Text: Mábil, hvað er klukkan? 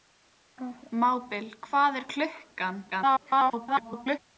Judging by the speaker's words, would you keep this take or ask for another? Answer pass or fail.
fail